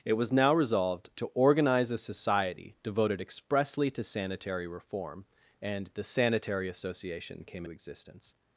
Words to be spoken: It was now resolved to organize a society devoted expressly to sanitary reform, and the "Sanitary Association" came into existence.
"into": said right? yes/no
no